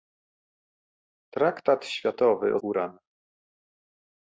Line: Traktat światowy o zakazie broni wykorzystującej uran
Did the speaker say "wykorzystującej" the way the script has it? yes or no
no